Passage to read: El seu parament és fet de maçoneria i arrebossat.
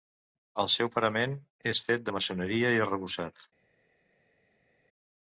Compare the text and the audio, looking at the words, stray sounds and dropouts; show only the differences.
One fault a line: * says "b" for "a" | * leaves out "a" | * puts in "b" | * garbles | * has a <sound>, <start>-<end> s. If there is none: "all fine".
all fine